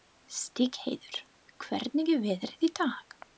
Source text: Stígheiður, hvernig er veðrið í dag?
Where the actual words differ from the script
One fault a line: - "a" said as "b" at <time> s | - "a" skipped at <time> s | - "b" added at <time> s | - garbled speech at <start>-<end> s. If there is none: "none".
none